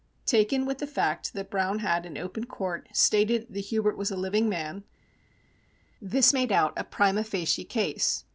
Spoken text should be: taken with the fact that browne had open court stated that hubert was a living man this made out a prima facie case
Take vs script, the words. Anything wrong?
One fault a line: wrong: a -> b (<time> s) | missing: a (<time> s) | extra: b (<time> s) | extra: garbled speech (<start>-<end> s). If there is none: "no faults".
extra: in (2.0 s)